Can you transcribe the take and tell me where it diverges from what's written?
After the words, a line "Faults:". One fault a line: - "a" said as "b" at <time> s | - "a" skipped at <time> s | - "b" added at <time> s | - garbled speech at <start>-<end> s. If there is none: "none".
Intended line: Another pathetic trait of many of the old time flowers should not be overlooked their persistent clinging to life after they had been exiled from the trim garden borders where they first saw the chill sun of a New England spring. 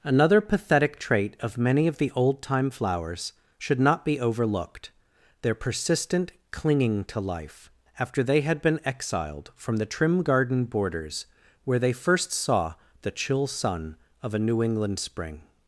Another pathetic trait of many of the old time flowers should not be overlooked their persistent clinging to life after they had been exiled from the trim garden borders where they first saw the chill sun of a New England spring.
Faults:
none